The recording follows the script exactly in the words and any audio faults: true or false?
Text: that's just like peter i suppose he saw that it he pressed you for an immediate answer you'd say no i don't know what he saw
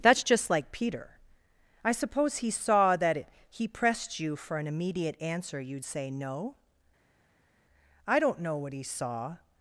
true